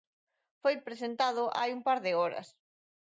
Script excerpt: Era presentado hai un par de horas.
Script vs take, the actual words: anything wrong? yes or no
yes